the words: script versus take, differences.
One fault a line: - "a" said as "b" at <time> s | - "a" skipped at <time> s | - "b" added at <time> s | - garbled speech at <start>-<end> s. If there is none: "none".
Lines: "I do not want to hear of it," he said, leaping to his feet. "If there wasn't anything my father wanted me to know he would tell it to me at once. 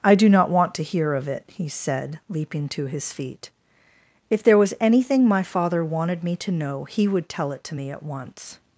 - "wasn't" said as "was" at 4.6 s